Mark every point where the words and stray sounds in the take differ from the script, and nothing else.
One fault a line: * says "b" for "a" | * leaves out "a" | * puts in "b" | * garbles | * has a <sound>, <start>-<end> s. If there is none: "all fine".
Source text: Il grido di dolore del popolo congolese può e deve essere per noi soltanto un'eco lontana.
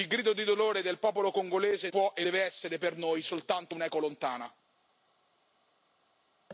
all fine